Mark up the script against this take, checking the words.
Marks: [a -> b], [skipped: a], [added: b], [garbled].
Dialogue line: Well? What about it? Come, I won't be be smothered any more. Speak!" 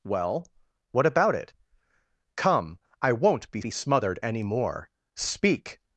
Well? What about it? Come, I won't be be smothered any more. Speak!"